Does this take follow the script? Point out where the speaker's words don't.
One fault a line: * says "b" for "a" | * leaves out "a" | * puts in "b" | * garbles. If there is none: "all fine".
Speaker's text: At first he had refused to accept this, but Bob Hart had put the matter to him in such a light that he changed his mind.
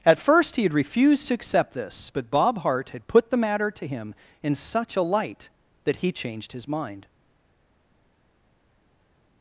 all fine